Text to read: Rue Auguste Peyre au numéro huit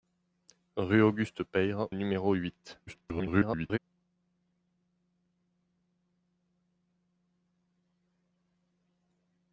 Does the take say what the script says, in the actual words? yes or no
no